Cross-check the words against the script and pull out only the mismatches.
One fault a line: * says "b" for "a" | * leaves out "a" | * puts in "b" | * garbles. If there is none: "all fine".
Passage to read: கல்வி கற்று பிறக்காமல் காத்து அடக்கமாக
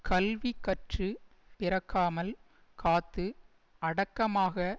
all fine